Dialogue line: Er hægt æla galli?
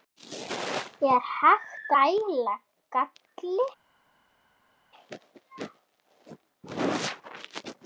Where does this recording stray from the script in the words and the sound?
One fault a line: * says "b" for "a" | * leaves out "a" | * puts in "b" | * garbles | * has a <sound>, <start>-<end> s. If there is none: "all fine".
all fine